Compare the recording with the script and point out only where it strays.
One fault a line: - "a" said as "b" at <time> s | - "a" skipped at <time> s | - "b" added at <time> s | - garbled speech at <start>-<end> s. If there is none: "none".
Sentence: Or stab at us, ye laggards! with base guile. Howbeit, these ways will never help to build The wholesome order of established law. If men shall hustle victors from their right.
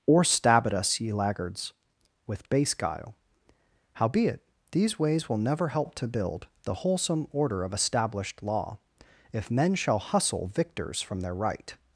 none